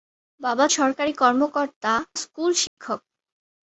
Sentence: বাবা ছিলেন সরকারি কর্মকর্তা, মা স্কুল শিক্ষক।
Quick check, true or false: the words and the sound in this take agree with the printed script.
false